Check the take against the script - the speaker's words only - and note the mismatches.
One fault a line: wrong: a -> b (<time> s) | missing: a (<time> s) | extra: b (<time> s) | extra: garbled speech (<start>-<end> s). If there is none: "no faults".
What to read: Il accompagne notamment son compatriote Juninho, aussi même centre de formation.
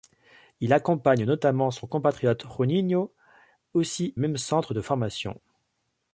no faults